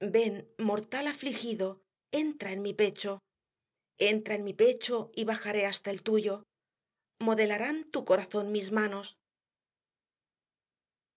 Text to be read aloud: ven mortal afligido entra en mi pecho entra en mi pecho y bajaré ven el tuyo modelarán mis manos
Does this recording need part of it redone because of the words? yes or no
yes